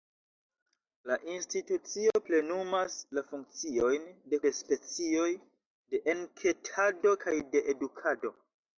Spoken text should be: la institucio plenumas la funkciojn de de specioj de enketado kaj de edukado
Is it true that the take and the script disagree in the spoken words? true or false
false